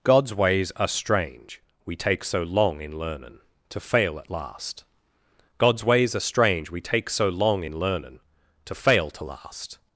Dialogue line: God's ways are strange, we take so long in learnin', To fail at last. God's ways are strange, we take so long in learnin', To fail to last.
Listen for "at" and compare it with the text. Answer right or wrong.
right